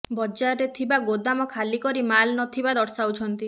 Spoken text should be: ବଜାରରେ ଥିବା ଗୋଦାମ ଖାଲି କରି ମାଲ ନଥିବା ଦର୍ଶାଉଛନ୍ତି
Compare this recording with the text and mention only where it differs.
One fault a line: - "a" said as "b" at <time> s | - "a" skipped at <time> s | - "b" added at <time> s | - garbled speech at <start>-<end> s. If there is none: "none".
none